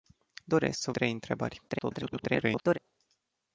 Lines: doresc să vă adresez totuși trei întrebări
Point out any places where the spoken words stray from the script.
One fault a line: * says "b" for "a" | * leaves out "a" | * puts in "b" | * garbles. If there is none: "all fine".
* leaves out "vă adresez totuși"
* garbles